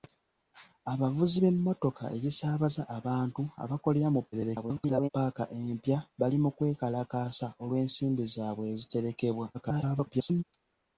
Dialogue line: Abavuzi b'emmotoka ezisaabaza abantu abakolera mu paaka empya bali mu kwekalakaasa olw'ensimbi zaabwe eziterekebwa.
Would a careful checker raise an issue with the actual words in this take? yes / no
yes